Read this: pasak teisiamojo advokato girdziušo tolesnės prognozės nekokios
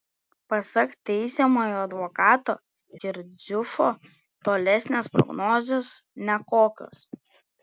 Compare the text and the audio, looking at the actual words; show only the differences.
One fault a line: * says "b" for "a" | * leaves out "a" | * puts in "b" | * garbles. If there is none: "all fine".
all fine